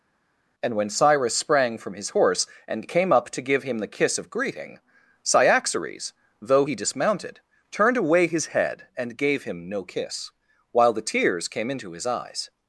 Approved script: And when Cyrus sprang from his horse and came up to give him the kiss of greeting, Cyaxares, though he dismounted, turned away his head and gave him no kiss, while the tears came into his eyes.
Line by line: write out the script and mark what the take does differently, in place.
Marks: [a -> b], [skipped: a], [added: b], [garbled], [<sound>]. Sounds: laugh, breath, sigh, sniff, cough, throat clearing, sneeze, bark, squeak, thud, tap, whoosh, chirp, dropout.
And when Cyrus sprang from his horse and came up to give him the kiss of greeting, Cyaxares, though he dismounted, turned away his head and gave him no kiss, while the tears came into his eyes.